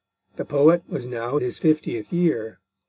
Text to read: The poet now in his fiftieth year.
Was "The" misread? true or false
false